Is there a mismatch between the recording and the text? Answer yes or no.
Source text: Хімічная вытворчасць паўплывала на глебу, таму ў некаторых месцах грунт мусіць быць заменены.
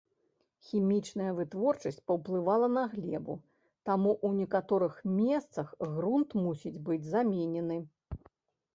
no